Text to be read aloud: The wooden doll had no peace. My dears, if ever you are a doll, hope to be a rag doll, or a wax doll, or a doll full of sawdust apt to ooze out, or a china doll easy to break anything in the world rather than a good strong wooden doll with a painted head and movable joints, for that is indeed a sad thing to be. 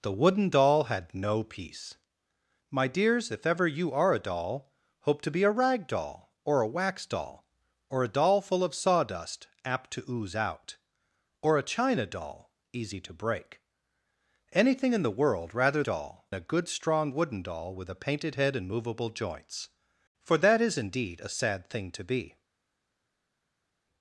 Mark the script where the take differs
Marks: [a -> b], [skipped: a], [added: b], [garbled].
The wooden doll had no peace. My dears, if ever you are a doll, hope to be a rag doll, or a wax doll, or a doll full of sawdust apt to ooze out, or a china doll easy to break anything in the world rather [than -> doll] a good strong wooden doll with a painted head and movable joints, for that is indeed a sad thing to be.